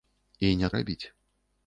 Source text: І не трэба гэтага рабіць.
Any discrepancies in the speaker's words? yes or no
yes